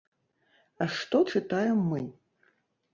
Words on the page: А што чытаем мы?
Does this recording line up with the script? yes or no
yes